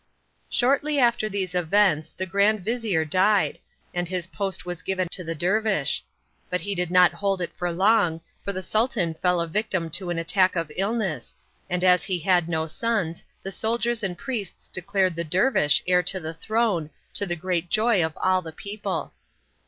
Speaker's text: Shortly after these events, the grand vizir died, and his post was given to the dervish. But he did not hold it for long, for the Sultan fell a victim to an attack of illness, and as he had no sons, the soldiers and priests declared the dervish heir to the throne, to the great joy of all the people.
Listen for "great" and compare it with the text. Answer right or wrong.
right